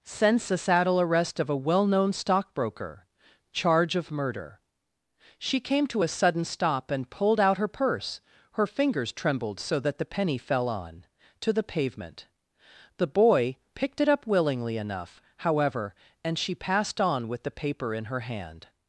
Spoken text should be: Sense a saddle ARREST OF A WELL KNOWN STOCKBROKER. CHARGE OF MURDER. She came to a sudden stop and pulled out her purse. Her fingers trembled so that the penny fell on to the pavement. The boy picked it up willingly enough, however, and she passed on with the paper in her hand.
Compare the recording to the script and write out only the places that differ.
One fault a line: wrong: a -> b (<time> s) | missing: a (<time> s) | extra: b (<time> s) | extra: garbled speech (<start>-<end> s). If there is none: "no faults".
no faults